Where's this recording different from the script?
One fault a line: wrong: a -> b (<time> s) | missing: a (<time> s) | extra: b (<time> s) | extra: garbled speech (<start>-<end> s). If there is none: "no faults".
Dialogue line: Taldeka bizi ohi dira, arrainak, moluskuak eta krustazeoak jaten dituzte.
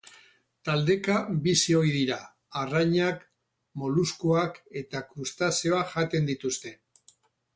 no faults